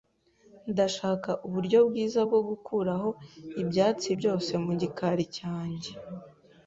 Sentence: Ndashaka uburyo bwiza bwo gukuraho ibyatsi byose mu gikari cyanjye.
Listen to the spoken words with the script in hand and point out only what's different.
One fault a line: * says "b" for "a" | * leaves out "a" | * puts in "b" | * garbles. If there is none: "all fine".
all fine